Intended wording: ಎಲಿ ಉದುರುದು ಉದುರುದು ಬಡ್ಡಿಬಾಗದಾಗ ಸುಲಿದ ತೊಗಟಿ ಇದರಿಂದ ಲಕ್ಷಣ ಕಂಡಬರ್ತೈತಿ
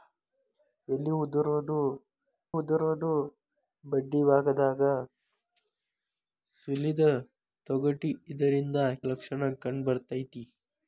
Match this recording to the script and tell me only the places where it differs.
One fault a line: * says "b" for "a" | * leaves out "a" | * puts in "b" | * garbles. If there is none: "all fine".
all fine